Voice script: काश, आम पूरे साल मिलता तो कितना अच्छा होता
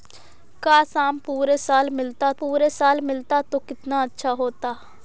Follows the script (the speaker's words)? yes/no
no